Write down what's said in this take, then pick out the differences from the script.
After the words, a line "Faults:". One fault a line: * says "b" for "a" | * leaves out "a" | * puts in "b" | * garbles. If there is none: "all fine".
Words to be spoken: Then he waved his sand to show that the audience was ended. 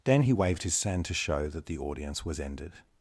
Then he waved his sand to show that the audience was ended.
Faults:
all fine